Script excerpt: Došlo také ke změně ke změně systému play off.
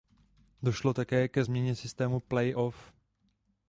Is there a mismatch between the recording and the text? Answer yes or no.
yes